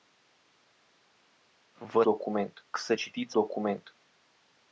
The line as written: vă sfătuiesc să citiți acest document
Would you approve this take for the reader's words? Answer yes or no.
no